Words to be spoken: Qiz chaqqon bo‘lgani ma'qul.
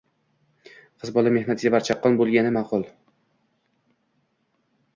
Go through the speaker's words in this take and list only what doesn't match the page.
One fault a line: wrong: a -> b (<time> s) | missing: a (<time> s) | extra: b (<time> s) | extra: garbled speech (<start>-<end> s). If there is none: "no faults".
extra: bola mehnatsevar (1.2 s)